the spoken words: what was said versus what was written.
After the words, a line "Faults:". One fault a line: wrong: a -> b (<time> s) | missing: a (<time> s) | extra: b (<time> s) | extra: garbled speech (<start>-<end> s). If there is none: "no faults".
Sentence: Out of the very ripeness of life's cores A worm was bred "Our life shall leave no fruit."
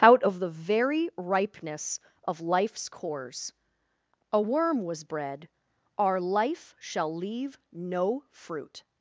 Out of the very ripeness of life's cores A worm was bred "Our life shall leave no fruit."
Faults:
no faults